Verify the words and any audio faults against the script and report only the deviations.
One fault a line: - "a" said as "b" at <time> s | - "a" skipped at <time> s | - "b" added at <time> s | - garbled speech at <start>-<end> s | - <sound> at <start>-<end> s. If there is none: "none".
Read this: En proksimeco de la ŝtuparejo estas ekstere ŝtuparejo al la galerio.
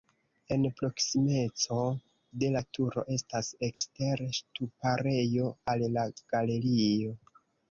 - "ŝtuparejo" said as "turo" at 2.8 s
- dropout at 3.7-3.8 s